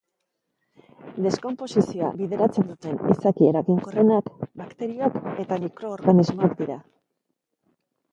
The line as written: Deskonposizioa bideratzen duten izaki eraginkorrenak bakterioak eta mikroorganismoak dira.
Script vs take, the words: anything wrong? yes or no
no